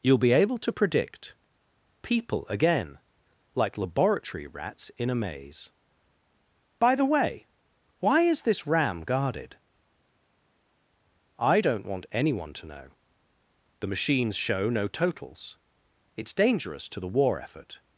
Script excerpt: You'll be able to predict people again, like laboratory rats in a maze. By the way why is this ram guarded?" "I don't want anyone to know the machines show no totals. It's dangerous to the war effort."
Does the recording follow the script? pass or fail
pass